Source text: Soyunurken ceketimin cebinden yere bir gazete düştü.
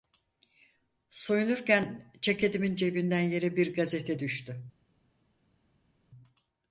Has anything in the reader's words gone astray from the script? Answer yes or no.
no